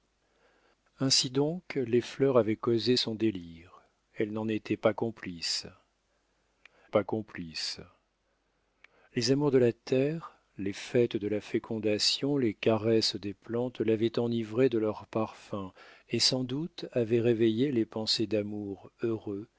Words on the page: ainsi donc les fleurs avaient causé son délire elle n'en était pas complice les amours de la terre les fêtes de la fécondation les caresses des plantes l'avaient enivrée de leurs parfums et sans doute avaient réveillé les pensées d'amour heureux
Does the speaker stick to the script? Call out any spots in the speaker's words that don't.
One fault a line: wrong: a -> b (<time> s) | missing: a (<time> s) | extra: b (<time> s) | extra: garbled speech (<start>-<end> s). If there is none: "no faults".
extra: pas complice (6.9 s)